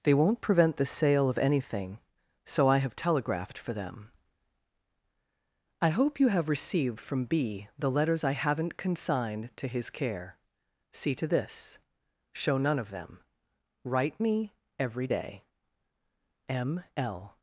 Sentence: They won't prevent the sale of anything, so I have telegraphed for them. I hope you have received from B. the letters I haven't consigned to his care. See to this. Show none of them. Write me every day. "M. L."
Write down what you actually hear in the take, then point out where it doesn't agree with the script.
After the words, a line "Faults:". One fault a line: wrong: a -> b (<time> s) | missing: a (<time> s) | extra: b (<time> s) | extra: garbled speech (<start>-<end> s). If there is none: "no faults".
They won't prevent the sale of anything, so I have telegraphed for them. I hope you have received from B. the letters I haven't consigned to his care. See to this. Show none of them. Write me every day. "M. L."
Faults:
no faults